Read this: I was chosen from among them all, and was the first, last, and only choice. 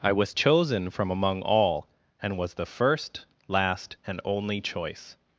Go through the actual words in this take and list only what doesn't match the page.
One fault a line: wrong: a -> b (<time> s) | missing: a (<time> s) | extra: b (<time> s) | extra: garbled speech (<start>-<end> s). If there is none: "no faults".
missing: them (1.4 s)